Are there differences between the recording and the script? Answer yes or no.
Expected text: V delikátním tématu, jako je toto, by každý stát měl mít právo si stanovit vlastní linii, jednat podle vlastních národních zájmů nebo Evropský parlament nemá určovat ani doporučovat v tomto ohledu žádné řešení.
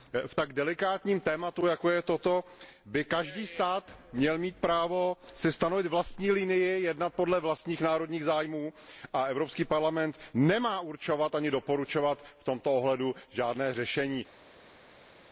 yes